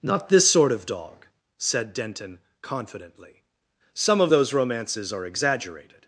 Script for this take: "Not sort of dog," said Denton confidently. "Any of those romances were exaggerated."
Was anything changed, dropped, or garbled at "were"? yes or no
yes